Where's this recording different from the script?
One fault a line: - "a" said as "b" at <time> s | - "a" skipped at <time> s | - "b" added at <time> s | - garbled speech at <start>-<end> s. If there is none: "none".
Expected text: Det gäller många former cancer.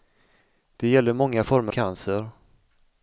none